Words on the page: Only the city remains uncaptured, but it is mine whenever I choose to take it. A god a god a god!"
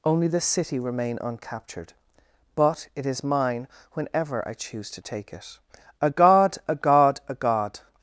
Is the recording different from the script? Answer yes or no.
yes